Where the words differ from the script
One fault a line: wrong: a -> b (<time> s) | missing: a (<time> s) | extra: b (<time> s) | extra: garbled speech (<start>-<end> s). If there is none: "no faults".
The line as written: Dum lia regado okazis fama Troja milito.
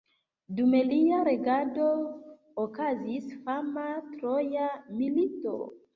no faults